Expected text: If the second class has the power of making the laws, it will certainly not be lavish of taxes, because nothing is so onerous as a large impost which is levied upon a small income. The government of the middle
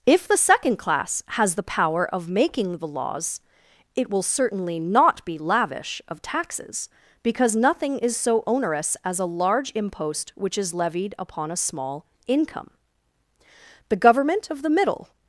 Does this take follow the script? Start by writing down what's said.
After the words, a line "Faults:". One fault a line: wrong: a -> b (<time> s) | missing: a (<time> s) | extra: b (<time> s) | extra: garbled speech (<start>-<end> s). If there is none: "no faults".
If the second class has the power of making the laws, it will certainly not be lavish of taxes, because nothing is so onerous as a large impost which is levied upon a small income. The government of the middle
Faults:
no faults